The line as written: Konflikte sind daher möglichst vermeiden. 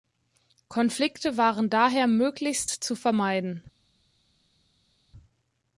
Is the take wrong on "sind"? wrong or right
wrong